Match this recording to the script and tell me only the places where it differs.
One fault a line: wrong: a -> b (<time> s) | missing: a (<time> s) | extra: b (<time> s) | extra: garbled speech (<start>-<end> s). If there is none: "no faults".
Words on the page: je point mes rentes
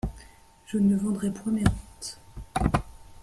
extra: ne vendrai (0.8 s)